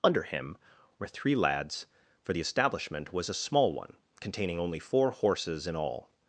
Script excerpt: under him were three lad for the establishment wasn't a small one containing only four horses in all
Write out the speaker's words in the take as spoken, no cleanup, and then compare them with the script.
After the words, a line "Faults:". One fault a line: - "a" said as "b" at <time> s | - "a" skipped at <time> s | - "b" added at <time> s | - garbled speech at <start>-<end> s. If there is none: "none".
under him were three lads for the establishment was a small one containing only four horses in all
Faults:
- "lad" said as "lads" at 1.4 s
- "wasn't" said as "was" at 3.1 s